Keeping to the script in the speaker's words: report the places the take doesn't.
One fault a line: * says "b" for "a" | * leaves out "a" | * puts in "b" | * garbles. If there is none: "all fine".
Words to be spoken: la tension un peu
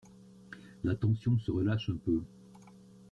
* puts in "se relâche"